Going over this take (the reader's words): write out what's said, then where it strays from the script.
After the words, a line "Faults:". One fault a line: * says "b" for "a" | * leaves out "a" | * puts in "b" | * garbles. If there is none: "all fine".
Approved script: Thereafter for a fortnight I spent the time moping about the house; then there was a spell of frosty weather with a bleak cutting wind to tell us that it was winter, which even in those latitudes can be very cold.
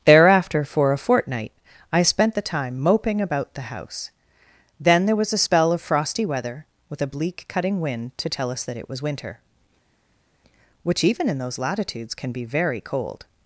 Thereafter for a fortnight I spent the time moping about the house; then there was a spell of frosty weather with a bleak cutting wind to tell us that it was winter, which even in those latitudes can be very cold.
Faults:
all fine